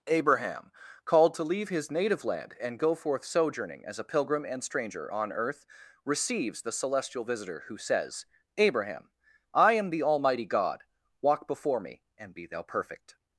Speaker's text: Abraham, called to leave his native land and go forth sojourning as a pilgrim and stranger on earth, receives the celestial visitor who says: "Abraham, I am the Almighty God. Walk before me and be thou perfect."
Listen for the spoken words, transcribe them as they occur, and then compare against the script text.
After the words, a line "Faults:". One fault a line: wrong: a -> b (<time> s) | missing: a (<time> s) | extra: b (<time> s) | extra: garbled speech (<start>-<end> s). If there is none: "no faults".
Abraham, called to leave his native land and go forth sojourning as a pilgrim and stranger on earth, receives the celestial visitor who says: "Abraham, I am the Almighty God. Walk before me and be thou perfect."
Faults:
no faults